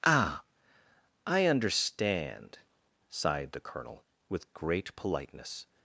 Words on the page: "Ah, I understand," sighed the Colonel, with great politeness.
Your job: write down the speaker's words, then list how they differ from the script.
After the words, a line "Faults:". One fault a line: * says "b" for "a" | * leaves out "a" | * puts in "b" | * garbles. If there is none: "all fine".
"Ah, I understand," sighed the Colonel, with great politeness.
Faults:
all fine